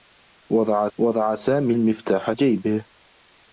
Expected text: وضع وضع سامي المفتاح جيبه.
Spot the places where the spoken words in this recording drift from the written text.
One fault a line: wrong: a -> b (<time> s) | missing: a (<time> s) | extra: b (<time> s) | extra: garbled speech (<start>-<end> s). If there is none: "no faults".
no faults